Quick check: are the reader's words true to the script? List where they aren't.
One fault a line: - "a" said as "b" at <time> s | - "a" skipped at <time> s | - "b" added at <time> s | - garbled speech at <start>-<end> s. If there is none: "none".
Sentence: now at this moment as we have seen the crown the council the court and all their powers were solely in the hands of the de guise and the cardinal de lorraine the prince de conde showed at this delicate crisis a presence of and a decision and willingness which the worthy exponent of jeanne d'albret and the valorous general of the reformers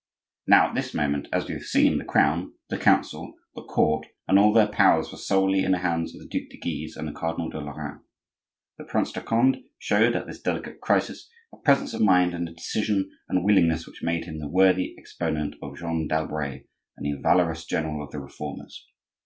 - "duc" added at 6.3 s
- "mind" added at 12.0 s
- "made him" added at 14.0 s